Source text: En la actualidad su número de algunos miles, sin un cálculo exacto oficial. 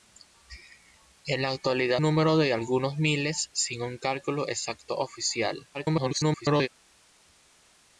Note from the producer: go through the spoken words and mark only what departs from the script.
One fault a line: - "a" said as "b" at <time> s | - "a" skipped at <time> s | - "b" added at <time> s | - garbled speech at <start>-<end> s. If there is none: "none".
- "su" skipped at 2.0 s
- garbled speech at 5.7-6.7 s